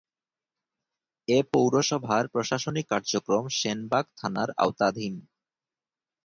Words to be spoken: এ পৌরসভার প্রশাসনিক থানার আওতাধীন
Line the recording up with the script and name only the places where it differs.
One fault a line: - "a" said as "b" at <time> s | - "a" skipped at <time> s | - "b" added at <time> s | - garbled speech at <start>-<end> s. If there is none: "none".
- "কার্যক্রম সেনবাগ" added at 2.9 s